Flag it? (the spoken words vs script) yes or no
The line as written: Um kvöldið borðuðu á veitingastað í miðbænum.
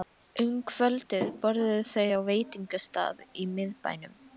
yes